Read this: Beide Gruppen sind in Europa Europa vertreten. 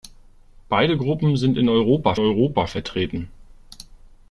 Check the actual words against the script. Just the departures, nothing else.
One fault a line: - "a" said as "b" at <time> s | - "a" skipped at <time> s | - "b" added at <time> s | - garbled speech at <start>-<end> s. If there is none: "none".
none